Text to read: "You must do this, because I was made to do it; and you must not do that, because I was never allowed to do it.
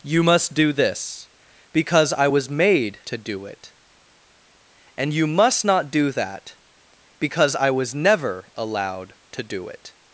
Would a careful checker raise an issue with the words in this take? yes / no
no